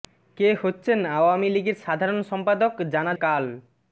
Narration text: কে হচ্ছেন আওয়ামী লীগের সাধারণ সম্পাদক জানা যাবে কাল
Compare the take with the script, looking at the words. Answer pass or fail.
fail